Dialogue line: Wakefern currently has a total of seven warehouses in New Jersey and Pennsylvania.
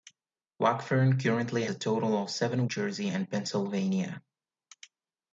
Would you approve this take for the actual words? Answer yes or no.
no